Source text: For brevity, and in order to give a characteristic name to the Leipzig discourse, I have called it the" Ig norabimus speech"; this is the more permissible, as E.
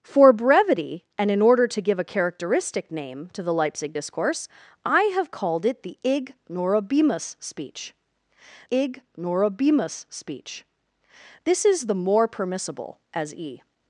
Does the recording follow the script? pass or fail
fail